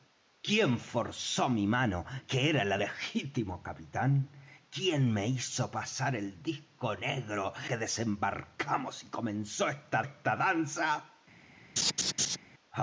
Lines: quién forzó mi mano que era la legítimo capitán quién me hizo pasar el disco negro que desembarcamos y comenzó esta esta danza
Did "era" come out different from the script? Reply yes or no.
no